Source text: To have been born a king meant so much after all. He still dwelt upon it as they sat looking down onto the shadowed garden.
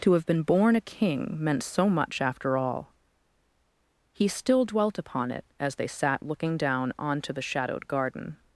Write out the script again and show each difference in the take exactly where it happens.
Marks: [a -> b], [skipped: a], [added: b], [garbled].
To have been born a king meant so much after all. He still dwelt upon it as they sat looking down onto the shadowed garden.